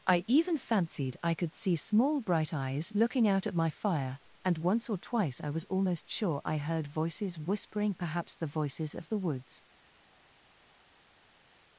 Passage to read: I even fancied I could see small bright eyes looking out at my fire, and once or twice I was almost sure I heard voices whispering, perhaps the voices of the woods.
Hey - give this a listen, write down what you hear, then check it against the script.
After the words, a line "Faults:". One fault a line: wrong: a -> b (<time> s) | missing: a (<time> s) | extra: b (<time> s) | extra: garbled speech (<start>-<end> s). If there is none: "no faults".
I even fancied I could see small bright eyes looking out at my fire, and once or twice I was almost sure I heard voices whispering, perhaps the voices of the woods.
Faults:
no faults